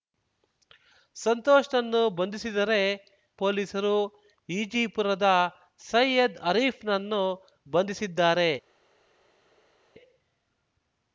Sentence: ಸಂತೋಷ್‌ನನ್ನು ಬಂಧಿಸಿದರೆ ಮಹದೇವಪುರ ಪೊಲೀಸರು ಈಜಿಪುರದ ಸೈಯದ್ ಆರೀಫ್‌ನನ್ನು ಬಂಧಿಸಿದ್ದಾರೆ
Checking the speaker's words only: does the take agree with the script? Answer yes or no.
no